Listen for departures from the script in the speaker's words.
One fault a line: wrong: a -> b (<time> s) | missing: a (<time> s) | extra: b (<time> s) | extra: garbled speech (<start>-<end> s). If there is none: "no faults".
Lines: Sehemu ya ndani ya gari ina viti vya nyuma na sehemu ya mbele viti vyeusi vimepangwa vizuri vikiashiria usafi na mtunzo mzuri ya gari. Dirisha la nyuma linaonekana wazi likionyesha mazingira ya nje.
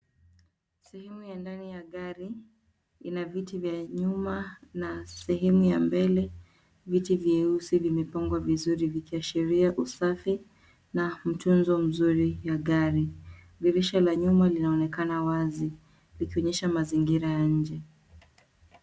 no faults